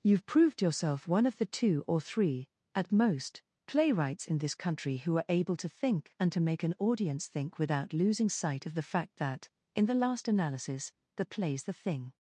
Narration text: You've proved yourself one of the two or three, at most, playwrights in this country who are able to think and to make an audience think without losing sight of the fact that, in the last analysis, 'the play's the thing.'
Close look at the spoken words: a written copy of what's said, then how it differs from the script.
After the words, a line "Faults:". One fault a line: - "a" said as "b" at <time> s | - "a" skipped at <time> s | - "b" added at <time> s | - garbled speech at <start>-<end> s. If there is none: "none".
You've proved yourself one of the two or three, at most, playwrights in this country who are able to think and to make an audience think without losing sight of the fact that, in the last analysis, 'the play's the thing.'
Faults:
none